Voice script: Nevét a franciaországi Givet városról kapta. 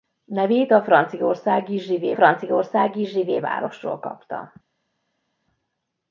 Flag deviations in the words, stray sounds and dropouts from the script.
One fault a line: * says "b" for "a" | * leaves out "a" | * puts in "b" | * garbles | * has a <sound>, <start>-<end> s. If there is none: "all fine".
* puts in "franciaországi Givet"